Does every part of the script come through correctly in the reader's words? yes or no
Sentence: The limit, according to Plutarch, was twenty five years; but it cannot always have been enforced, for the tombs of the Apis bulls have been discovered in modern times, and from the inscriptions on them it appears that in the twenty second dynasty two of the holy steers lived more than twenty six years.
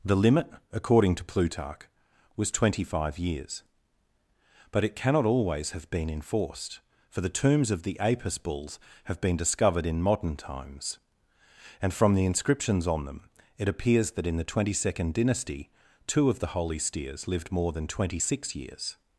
yes